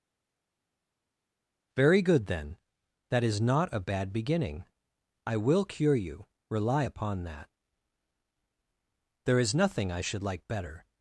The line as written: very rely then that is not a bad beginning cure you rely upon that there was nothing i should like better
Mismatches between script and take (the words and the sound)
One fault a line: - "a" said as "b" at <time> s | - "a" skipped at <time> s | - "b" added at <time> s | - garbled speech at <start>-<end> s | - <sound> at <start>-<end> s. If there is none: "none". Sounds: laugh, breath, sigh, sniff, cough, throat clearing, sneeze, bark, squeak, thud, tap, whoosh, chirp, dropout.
- "rely" said as "good" at 2.0 s
- "i will" added at 5.2 s
- "was" said as "is" at 9.4 s